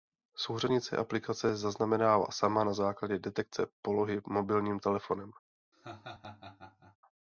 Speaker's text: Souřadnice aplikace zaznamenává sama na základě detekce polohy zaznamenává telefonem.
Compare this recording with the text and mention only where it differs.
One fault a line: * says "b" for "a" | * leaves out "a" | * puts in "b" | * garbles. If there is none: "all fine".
* says "mobilním" for "zaznamenává"